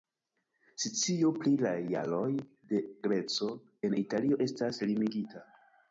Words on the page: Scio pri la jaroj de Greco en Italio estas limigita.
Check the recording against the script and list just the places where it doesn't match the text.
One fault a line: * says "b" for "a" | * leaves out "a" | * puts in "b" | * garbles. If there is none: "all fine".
all fine